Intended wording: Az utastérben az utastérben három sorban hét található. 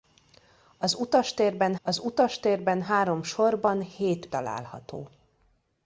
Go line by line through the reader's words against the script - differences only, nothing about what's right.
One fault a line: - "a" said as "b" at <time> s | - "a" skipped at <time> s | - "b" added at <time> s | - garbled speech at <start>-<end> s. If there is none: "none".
none